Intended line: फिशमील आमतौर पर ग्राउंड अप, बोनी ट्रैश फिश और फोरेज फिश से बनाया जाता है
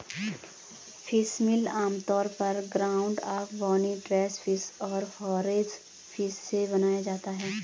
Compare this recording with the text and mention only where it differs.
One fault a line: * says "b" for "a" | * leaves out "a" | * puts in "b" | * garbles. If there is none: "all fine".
all fine